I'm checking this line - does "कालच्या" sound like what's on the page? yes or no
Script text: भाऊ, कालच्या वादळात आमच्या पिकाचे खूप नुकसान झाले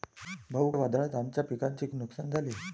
no